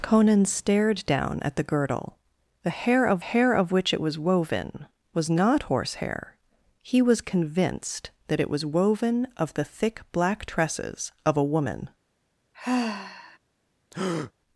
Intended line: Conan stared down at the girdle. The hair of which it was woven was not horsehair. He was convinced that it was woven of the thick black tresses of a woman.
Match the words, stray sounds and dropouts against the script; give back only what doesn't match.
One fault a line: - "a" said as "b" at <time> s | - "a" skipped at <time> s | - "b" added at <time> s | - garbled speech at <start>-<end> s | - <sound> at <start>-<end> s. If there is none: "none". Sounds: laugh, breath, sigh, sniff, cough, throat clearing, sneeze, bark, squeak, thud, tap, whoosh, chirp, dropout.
- "hair of" added at 3.2 s
- sigh at 12.5-13.4 s
- breath at 13.9-14.3 s